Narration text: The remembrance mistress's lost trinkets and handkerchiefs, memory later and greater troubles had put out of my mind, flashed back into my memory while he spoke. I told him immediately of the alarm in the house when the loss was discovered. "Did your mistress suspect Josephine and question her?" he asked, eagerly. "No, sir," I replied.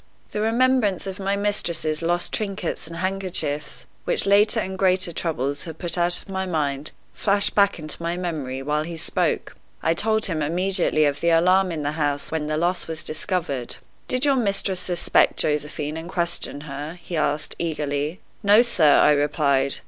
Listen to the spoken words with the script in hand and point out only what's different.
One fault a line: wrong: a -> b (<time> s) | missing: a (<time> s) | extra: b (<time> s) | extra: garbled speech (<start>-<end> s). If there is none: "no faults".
extra: of my (1.1 s)
wrong: memory -> which (4.0 s)